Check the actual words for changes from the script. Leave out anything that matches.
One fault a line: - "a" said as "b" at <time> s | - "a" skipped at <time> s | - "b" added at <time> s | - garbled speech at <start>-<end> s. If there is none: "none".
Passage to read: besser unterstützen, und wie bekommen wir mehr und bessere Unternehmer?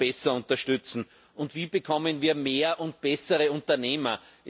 none